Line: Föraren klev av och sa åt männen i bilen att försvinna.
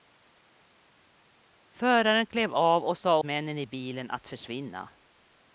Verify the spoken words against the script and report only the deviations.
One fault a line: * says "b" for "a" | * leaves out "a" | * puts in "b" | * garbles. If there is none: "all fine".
* leaves out "åt"